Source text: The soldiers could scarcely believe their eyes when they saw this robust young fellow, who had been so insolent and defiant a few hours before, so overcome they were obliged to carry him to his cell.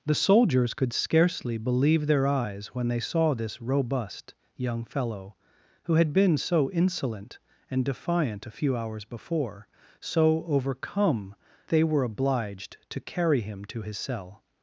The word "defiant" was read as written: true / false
true